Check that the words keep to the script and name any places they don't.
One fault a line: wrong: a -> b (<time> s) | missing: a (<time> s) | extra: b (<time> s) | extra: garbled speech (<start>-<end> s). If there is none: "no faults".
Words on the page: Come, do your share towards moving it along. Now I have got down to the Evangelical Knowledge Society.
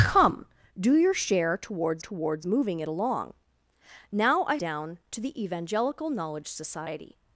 extra: towards (2.0 s)
missing: have got (4.6 s)